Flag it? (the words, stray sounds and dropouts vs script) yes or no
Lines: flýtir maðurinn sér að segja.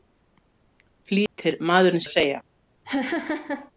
yes